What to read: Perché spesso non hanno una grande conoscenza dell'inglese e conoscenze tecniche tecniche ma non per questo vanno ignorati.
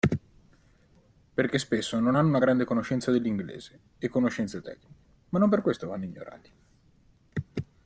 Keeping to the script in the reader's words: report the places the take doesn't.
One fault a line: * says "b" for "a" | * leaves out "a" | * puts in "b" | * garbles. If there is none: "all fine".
* leaves out "tecniche"